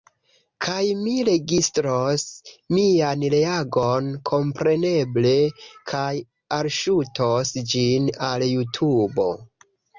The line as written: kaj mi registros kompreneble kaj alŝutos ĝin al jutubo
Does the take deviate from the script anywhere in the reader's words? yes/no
yes